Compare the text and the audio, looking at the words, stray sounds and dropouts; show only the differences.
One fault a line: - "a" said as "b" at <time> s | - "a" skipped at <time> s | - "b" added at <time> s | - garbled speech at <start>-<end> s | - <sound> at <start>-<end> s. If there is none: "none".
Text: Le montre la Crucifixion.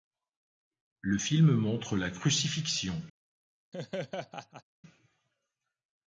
- "film" added at 1.2 s
- laugh at 3.7-4.6 s